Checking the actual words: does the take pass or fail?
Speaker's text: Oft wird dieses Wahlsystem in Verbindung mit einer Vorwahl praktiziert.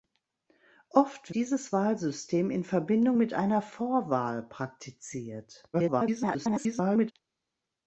fail